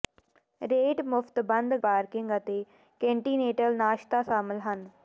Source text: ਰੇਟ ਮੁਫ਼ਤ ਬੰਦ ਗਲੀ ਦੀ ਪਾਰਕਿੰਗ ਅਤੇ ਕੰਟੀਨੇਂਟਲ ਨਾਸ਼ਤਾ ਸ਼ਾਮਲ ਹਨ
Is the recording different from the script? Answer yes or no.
yes